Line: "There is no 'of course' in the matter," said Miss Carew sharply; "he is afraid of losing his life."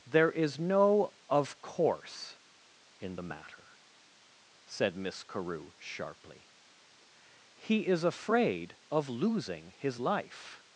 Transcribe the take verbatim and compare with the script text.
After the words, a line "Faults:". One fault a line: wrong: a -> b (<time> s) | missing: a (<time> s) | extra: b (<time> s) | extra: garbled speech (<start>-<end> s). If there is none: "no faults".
"There is no 'of course' in the matter," said Miss Carew sharply; "he is afraid of losing his life."
Faults:
no faults